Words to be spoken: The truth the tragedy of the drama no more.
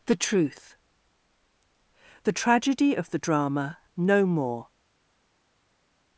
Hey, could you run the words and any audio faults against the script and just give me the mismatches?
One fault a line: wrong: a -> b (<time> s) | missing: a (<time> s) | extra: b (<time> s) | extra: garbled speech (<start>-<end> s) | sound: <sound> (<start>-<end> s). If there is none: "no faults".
no faults